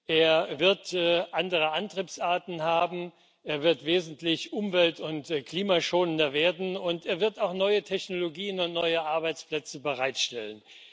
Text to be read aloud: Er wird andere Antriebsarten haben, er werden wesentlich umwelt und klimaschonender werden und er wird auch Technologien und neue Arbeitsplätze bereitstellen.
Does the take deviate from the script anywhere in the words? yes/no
yes